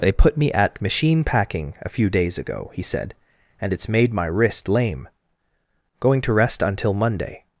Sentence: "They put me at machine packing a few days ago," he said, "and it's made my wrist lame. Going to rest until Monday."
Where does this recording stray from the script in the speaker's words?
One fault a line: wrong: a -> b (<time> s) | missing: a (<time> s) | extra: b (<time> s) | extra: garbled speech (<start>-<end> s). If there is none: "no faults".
no faults